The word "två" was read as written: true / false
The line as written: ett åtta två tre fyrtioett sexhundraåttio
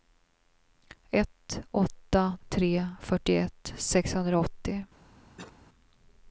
false